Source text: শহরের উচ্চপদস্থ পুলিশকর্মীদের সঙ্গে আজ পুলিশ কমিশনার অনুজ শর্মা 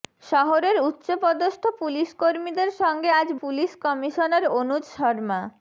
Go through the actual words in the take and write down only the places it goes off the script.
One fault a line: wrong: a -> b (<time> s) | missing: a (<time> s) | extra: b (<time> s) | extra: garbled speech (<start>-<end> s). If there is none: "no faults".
no faults